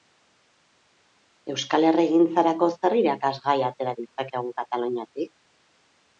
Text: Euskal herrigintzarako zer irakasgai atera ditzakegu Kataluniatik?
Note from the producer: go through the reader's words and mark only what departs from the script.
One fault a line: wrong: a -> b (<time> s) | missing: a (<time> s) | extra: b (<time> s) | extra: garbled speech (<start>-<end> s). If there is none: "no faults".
no faults